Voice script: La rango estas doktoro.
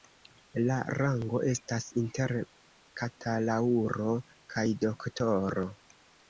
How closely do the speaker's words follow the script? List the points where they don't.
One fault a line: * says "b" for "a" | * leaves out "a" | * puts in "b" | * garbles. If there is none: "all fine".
* puts in "inter bakalaŭro kaj"